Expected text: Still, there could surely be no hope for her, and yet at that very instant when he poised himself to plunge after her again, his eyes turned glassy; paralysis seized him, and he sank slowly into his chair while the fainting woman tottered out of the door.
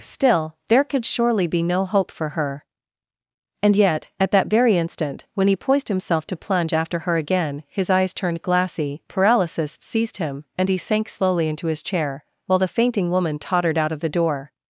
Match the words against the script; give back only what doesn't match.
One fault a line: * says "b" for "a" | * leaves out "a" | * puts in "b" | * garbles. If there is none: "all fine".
all fine